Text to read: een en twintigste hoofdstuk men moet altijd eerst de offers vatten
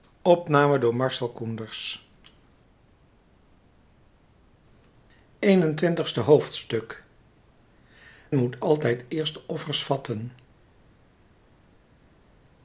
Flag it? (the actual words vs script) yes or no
yes